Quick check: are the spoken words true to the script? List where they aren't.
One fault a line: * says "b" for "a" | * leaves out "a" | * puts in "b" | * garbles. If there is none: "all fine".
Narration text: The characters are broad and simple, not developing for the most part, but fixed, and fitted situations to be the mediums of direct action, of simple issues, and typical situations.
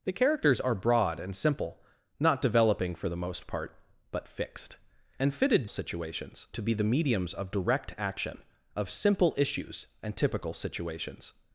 all fine